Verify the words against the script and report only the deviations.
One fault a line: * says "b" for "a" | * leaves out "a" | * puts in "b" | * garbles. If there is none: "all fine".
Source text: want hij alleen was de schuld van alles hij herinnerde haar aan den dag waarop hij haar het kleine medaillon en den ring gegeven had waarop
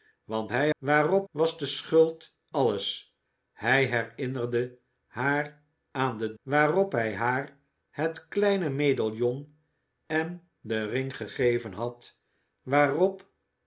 * says "waarop" for "alleen"
* leaves out "van"
* leaves out "dag"